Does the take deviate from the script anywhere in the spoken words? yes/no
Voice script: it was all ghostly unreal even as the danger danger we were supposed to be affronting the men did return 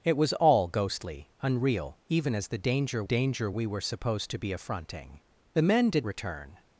no